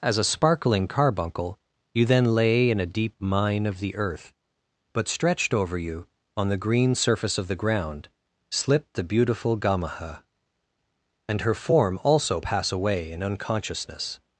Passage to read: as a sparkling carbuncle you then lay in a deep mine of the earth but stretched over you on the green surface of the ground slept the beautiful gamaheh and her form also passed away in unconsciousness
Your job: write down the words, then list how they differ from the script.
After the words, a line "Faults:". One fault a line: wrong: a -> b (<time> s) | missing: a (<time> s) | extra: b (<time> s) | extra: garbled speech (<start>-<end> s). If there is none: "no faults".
as a sparkling carbuncle you then lay in a deep mine of the earth but stretched over you on the green surface of the ground slipped the beautiful gamaheh and her form also pass away in unconsciousness
Faults:
wrong: slept -> slipped (8.5 s)
wrong: passed -> pass (12.4 s)